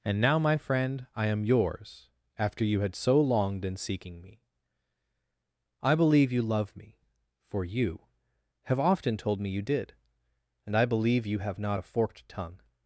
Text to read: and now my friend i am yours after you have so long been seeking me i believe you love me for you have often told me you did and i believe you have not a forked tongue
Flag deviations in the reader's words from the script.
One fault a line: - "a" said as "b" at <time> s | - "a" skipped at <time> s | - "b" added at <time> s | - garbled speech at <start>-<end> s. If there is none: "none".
- "have" said as "had" at 2.8 s